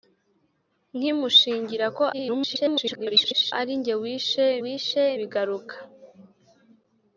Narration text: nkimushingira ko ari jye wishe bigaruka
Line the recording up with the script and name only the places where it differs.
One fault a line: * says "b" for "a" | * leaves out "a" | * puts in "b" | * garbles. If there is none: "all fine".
* garbles
* puts in "wishe"